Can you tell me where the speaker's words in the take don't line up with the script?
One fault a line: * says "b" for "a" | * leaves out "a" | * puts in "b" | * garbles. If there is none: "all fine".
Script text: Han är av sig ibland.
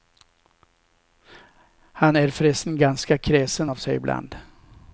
* puts in "förresten ganska kräsen"